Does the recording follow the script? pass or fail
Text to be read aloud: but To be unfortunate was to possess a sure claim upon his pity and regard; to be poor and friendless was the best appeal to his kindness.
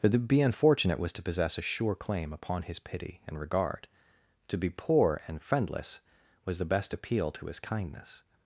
pass